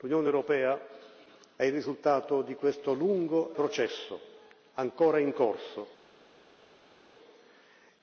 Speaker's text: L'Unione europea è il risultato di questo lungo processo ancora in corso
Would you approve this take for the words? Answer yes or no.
yes